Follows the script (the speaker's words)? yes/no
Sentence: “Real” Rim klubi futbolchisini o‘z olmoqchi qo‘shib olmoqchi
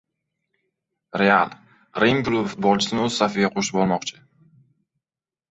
no